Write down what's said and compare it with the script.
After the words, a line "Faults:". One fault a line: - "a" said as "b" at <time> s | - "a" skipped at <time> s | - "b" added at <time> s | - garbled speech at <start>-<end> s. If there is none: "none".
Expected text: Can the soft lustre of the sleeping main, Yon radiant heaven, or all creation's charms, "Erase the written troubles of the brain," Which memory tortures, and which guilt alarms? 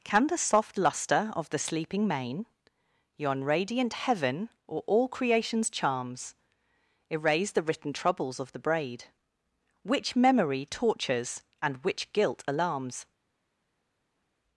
Can the soft lustre of the sleeping main, Yon radiant heaven, or all creation's charms, "Erase the written troubles of the braid," Which memory tortures, and which guilt alarms?
Faults:
- "brain" said as "braid" at 8.6 s